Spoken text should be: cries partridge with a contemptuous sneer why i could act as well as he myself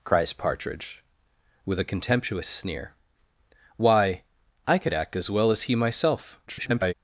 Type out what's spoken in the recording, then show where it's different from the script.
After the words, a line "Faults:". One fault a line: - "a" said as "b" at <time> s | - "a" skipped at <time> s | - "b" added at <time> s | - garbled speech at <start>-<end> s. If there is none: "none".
cries partridge with a contemptuous sneer why i could act as well as he myself [garbled]
Faults:
- garbled speech at 6.5-6.9 s